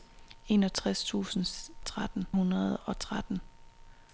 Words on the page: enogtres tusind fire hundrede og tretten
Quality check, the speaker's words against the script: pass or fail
fail